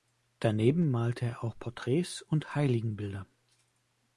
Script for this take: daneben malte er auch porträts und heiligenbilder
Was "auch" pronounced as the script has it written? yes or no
yes